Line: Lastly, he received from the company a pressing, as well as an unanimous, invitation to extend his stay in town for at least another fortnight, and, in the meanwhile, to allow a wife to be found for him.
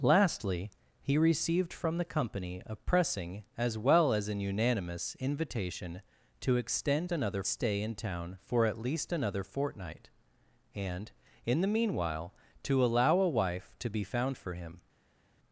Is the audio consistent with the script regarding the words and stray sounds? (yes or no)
no